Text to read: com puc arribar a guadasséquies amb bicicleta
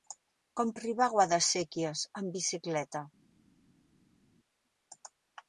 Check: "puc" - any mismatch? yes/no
yes